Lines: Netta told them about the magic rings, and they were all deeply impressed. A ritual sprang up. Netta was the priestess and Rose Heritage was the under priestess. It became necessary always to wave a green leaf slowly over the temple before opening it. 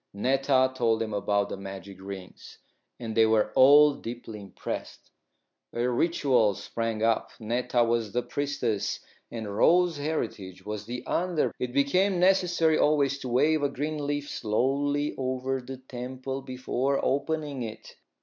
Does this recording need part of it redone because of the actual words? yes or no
yes